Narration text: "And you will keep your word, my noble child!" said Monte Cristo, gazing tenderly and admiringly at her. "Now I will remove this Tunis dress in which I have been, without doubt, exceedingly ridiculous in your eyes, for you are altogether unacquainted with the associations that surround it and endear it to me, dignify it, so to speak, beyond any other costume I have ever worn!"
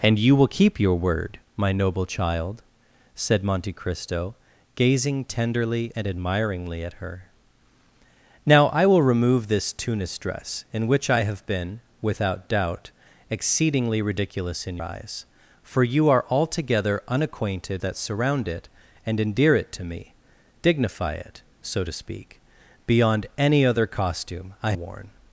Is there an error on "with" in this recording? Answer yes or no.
yes